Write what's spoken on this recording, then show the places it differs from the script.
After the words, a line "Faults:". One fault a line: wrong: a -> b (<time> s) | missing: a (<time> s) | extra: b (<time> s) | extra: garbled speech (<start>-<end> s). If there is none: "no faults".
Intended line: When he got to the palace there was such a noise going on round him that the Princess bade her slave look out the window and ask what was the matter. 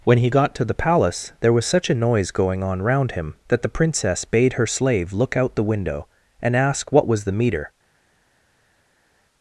When he got to the palace there was such a noise going on round him that the Princess bade her slave look out the window and ask what was the meter.
Faults:
wrong: matter -> meter (7.3 s)